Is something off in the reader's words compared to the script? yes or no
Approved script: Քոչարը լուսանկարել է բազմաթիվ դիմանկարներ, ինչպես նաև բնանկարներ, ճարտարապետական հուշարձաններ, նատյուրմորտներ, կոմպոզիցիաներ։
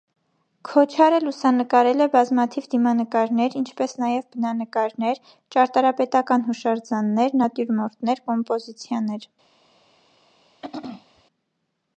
no